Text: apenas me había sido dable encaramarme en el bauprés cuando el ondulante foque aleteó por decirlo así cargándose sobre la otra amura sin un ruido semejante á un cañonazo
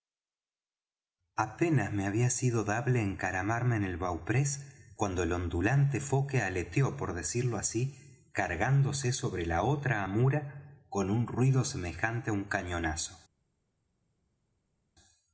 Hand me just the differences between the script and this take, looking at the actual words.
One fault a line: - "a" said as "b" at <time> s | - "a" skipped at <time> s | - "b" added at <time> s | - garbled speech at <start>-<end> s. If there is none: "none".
- "sin" said as "con" at 10.9 s